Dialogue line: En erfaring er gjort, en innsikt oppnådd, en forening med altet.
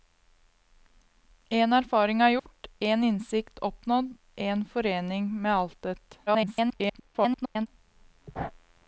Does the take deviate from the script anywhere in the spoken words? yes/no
yes